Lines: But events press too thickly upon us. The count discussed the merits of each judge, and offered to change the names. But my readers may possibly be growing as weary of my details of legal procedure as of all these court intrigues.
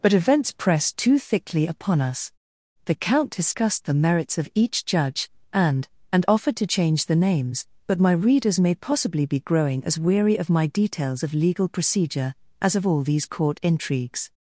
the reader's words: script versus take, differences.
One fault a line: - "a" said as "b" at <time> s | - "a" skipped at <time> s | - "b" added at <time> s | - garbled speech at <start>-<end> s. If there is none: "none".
- "and" added at 6.1 s